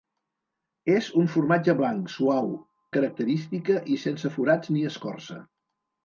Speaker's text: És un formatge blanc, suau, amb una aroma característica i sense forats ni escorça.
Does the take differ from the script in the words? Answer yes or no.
yes